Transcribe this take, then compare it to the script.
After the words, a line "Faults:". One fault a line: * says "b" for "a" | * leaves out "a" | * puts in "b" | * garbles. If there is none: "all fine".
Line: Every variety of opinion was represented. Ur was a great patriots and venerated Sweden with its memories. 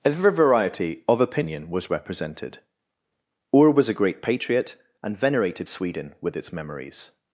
Every variety of opinion was represented. Ur was a great patriot and venerated Sweden with its memories.
Faults:
* says "patriot" for "patriots"